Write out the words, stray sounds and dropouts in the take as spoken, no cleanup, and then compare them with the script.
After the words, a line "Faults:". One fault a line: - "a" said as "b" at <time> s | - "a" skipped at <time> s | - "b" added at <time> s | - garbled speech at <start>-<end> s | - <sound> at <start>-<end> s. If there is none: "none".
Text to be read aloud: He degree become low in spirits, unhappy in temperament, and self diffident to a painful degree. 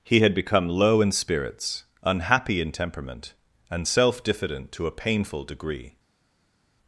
He had become low in spirits, unhappy in temperament, and self diffident to a painful degree.
Faults:
- "degree" said as "had" at 0.2 s